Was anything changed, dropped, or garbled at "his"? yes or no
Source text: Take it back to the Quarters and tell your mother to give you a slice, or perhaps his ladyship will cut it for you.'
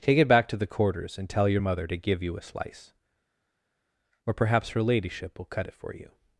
yes